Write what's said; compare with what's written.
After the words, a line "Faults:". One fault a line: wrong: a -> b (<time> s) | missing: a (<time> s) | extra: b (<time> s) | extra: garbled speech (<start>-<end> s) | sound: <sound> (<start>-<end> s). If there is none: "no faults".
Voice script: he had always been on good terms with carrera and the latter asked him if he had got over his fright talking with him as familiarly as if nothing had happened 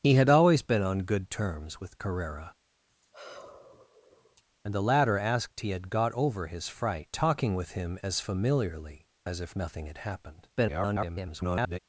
he had always been on good terms with carrera and the latter asked he had got over his fright talking with him as familiarly as if nothing had happened [garbled]
Faults:
sound: sigh (2.9-4.4 s)
missing: him if (5.6 s)
extra: garbled speech (10.6-11.8 s)